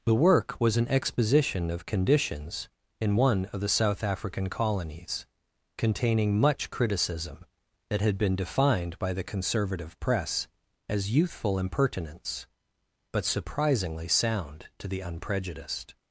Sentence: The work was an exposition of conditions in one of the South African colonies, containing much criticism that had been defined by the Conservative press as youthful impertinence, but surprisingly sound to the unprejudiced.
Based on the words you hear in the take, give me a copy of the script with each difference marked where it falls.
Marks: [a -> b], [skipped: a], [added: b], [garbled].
The work was an exposition of conditions in one of the South African colonies, containing much criticism that had been defined by the Conservative press as youthful impertinence, but surprisingly sound to the unprejudiced.